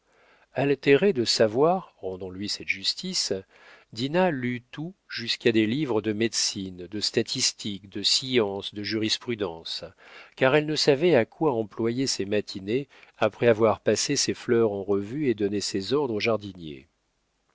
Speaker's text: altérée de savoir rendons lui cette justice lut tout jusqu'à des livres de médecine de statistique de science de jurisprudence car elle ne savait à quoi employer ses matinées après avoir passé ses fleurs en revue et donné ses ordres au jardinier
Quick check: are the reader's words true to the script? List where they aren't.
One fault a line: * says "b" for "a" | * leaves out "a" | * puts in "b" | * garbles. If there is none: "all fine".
* puts in "dinah"